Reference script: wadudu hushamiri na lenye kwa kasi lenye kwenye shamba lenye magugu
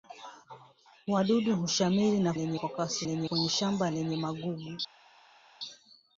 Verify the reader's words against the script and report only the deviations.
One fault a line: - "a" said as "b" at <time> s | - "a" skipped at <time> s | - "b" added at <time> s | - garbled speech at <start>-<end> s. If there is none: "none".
none